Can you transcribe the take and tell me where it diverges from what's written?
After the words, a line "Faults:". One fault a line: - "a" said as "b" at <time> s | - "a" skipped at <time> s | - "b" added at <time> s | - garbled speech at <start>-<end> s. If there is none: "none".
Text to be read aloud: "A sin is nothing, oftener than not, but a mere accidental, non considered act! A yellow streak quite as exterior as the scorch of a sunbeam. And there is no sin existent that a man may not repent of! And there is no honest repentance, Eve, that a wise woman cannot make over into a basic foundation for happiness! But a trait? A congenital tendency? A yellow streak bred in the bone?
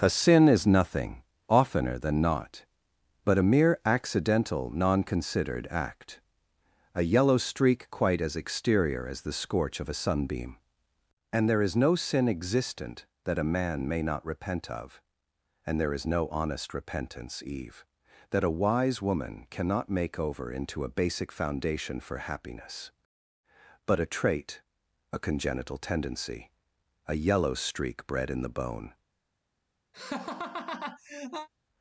"A sin is nothing, oftener than not, but a mere accidental, non considered act! A yellow streak quite as exterior as the scorch of a sunbeam. And there is no sin existent that a man may not repent of! And there is no honest repentance, Eve, that a wise woman cannot make over into a basic foundation for happiness! But a trait? A congenital tendency? A yellow streak bred in the bone?
Faults:
none